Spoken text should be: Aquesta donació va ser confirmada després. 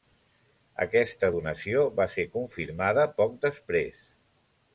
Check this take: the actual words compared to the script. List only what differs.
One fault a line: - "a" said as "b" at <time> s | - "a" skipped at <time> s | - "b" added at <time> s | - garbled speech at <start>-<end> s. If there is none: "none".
- "poc" added at 3.2 s